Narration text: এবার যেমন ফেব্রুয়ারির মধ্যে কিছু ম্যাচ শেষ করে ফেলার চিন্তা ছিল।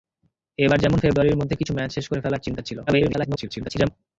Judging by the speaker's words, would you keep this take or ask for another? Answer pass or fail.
fail